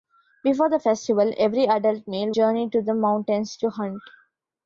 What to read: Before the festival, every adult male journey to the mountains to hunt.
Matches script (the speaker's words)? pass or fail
pass